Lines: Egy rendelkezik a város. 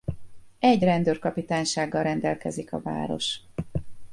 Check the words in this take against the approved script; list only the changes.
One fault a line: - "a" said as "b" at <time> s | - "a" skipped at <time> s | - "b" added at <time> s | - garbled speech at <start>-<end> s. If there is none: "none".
- "rendőrkapitánysággal" added at 0.8 s